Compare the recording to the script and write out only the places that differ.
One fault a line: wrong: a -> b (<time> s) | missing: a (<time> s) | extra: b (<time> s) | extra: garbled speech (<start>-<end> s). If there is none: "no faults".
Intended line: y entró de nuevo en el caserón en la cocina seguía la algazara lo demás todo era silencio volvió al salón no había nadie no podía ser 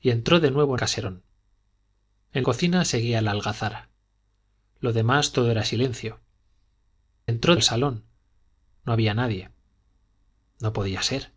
missing: el (0.8 s)
missing: la (2.5 s)
wrong: volvió -> entró (7.3 s)